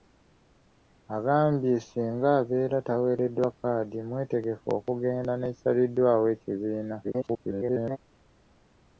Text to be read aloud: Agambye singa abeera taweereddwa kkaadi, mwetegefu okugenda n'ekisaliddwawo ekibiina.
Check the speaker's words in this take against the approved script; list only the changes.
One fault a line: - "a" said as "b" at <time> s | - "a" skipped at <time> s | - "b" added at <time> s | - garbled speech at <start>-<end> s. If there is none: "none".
- garbled speech at 7.0-8.0 s